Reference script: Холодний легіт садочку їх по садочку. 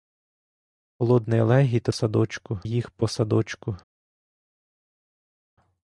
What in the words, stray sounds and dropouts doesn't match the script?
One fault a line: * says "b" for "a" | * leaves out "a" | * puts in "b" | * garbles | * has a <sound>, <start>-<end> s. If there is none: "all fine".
all fine